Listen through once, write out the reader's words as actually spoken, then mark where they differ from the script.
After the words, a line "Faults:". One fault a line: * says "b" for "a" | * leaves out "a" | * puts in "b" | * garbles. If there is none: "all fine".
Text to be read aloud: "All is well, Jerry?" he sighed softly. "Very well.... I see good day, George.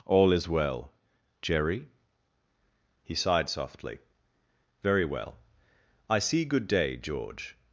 "All is well, Jerry?" he sighed softly. "Very well.... I see good day, George.
Faults:
all fine